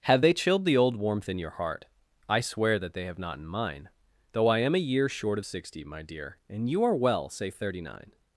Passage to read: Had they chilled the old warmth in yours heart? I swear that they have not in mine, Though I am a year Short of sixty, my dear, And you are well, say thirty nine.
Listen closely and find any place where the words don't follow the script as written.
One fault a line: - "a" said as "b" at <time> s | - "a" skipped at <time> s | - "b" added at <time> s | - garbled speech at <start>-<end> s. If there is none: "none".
- "Had" said as "Have" at 0.1 s
- "yours" said as "your" at 1.4 s